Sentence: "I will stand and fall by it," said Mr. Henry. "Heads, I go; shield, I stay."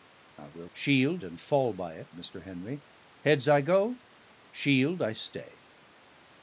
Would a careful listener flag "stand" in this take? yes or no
yes